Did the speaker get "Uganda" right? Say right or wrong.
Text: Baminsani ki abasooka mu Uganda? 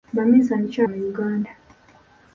right